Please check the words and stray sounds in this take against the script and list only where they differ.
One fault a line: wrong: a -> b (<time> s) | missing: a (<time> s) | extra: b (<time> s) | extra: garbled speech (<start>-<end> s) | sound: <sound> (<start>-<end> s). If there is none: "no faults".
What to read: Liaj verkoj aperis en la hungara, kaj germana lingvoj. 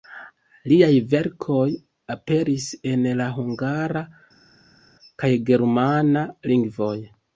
no faults